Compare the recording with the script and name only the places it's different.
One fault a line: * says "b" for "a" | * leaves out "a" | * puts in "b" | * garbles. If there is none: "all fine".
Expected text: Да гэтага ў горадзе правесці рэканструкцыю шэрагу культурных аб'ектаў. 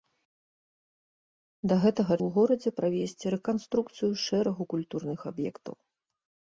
all fine